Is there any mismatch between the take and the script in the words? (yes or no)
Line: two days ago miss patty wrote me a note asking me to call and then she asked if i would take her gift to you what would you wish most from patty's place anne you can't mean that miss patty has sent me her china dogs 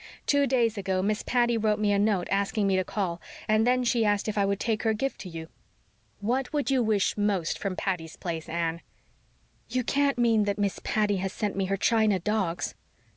no